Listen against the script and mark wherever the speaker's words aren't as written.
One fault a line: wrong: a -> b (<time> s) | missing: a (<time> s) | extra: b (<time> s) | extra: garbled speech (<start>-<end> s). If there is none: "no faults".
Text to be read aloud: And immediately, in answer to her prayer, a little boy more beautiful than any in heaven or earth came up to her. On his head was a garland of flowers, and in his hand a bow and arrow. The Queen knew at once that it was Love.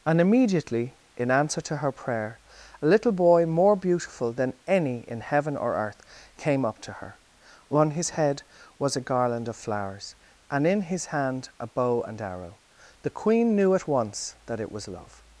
no faults